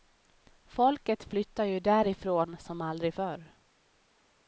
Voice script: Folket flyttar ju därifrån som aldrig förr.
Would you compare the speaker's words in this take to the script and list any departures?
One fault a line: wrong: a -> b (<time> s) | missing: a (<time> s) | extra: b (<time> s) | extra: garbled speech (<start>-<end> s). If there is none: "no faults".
no faults